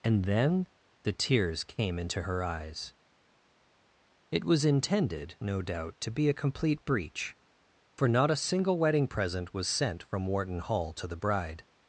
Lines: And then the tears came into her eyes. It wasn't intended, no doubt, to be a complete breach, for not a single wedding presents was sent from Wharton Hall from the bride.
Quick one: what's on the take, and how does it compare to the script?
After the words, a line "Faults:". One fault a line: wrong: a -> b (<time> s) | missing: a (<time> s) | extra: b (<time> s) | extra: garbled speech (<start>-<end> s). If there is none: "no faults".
And then the tears came into her eyes. It was intended, no doubt, to be a complete breach, for not a single wedding present was sent from Wharton Hall to the bride.
Faults:
wrong: wasn't -> was (4.4 s)
wrong: presents -> present (9.1 s)
wrong: from -> to (10.9 s)